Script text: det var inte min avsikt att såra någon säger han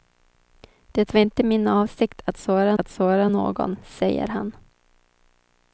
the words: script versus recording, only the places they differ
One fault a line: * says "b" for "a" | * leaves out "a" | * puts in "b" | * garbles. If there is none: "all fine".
* puts in "att såra"